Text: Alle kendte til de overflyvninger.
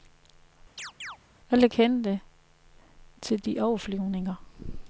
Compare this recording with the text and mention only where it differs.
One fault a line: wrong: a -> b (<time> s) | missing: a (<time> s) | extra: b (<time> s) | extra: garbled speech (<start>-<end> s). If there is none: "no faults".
no faults